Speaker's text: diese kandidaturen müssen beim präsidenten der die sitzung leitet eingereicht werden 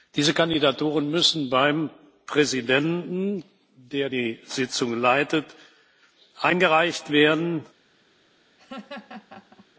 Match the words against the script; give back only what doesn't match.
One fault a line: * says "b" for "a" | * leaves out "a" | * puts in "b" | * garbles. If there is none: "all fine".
all fine